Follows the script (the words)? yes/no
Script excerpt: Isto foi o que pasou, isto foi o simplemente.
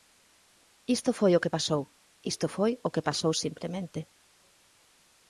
no